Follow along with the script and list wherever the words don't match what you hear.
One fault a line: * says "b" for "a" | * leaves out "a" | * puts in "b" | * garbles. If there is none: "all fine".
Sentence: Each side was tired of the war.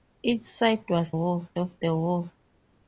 * says "war" for "tired"